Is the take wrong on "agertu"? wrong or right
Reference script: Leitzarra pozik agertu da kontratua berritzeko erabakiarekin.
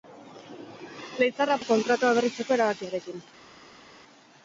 wrong